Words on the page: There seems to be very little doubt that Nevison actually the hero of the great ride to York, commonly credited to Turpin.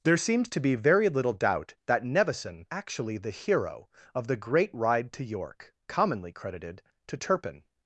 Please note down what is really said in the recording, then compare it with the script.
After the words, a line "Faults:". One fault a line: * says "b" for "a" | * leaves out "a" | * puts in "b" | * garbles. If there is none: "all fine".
There seems to be very little doubt that Nevison actually the hero of the great ride to York, commonly credited to Turpin.
Faults:
all fine